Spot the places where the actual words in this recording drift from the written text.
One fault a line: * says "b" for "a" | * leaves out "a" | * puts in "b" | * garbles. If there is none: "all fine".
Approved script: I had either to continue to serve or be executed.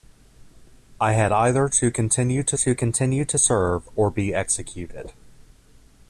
* puts in "to continue to"